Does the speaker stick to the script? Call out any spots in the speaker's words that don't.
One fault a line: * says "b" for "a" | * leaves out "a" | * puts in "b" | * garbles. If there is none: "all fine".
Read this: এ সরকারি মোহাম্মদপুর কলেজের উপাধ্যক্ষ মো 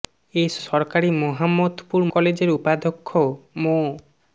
all fine